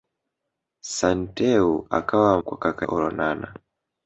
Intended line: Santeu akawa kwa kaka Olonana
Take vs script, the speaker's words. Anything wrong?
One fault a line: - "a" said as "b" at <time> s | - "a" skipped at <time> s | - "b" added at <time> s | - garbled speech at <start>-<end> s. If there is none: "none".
none